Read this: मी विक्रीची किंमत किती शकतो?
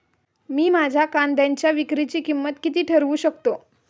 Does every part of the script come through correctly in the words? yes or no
no